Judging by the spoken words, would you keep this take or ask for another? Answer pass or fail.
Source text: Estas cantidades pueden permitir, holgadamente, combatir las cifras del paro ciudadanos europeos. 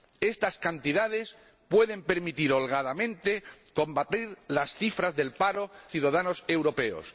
pass